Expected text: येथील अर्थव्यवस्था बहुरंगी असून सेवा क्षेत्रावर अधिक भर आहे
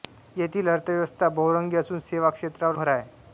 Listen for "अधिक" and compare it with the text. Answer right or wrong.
wrong